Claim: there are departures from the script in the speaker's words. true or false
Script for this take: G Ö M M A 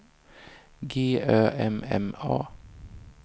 false